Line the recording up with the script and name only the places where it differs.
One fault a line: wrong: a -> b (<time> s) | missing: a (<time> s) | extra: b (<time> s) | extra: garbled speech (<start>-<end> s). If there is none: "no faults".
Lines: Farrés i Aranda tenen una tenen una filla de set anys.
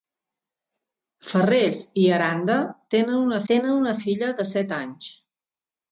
no faults